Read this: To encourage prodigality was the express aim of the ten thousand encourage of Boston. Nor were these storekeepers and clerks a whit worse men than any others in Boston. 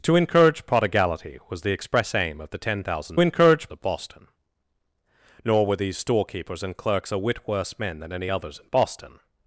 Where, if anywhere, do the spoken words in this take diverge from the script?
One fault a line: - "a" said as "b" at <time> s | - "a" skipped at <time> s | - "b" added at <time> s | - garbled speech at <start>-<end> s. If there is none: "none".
none